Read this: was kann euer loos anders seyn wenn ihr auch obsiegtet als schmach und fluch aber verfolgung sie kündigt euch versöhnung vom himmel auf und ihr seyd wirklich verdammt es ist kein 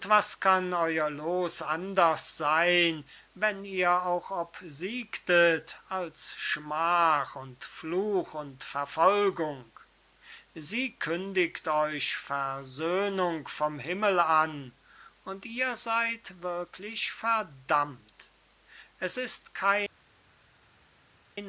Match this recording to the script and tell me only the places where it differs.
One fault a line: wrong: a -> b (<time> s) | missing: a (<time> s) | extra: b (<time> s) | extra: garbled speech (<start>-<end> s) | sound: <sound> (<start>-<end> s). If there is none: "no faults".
wrong: aber -> und (8.3 s)
wrong: auf -> an (14.2 s)